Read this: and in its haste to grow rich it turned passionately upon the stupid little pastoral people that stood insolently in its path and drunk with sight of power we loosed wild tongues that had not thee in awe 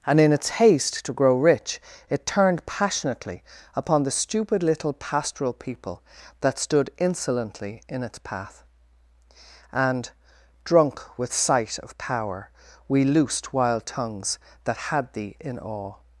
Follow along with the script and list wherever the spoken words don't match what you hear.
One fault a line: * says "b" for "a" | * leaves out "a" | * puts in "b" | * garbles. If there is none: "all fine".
* leaves out "not"